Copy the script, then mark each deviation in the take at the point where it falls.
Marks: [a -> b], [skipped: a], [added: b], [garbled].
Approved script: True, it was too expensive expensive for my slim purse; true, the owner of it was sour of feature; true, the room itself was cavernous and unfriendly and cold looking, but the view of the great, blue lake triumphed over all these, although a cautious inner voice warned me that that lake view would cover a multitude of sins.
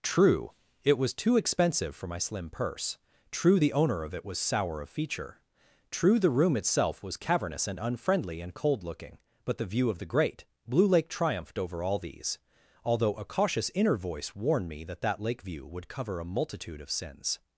True, it was too expensive [skipped: expensive] for my slim purse; true, the owner of it was sour of feature; true, the room itself was cavernous and unfriendly and cold looking, but the view of the great, blue lake triumphed over all these, although a cautious inner voice warned me that that lake view would cover a multitude of sins.